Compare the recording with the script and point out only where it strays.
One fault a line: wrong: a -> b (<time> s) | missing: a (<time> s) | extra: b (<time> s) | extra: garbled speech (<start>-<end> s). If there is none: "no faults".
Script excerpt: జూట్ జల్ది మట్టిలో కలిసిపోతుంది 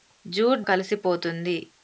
missing: జల్ది మట్టిలో (0.6 s)